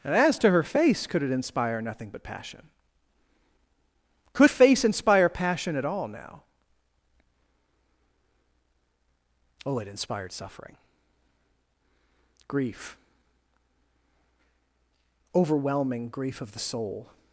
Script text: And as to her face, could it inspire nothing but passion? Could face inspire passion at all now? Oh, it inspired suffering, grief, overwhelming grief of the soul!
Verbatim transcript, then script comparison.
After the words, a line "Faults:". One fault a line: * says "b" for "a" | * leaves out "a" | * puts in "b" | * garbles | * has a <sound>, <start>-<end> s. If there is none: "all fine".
And as to her face, could it inspire nothing but passion? Could face inspire passion at all now? Oh, it inspired suffering, grief, overwhelming grief of the soul!
Faults:
all fine